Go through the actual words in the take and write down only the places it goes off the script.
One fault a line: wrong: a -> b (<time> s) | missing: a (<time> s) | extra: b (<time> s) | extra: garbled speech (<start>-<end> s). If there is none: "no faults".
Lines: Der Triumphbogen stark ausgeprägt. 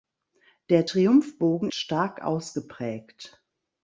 no faults